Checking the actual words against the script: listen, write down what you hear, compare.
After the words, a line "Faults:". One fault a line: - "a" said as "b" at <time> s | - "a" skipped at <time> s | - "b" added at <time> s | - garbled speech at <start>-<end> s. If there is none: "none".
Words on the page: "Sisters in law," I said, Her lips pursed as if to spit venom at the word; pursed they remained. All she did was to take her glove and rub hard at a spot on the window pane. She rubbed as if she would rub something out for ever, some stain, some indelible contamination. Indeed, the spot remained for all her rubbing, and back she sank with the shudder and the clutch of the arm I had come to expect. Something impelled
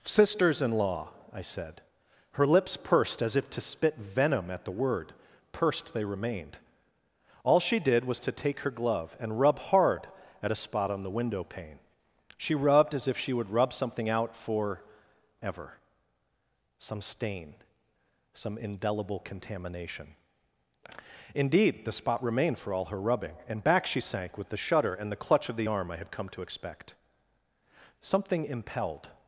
"Sisters in law," I said, Her lips pursed as if to spit venom at the word; pursed they remained. All she did was to take her glove and rub hard at a spot on the window pane. She rubbed as if she would rub something out for ever, some stain, some indelible contamination. Indeed, the spot remained for all her rubbing, and back she sank with the shudder and the clutch of the arm I had come to expect. Something impelled
Faults:
none